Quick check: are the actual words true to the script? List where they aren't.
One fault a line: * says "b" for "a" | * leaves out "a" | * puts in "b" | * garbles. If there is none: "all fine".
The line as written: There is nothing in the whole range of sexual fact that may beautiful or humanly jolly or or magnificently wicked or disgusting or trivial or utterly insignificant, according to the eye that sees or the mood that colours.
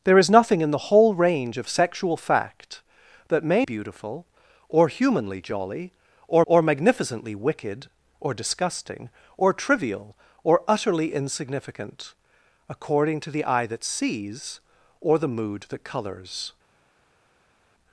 all fine